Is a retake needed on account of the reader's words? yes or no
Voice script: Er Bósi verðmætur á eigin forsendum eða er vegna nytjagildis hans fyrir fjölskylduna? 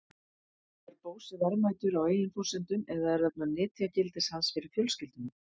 no